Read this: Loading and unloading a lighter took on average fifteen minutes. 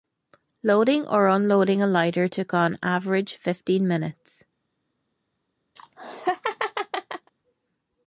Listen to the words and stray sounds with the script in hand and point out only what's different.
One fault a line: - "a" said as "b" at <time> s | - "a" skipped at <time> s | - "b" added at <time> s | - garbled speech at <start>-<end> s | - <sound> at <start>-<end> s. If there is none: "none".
- "and" said as "or" at 1.1 s
- laugh at 5.8-7.3 s